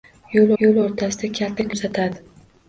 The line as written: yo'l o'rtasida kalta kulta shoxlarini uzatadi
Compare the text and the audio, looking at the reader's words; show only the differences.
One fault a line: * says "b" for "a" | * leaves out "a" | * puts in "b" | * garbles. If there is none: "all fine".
* puts in "yo'l"
* leaves out "kulta shoxlarini"